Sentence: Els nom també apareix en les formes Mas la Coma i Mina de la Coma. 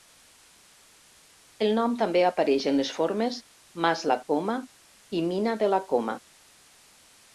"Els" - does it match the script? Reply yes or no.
no